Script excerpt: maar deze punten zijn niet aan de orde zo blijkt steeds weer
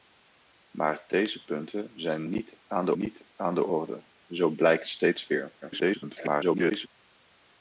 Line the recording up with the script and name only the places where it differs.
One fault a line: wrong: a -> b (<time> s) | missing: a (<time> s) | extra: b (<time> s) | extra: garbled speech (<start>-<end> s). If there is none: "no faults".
extra: niet aan de (3.0 s)
extra: garbled speech (5.6-6.9 s)